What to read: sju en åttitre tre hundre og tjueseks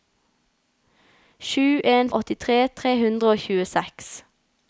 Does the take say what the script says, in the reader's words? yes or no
yes